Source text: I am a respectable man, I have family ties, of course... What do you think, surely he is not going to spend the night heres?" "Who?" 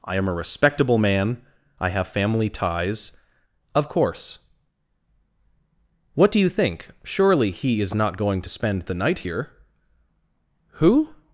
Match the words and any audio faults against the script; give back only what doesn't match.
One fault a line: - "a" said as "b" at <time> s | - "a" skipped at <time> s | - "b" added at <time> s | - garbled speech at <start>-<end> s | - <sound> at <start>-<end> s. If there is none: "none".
- "heres" said as "here" at 9.2 s